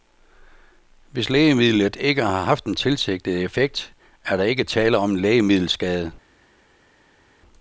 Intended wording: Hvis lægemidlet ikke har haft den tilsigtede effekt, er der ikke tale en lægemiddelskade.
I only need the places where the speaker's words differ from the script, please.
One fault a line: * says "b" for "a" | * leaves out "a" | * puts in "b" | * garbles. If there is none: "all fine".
* puts in "om"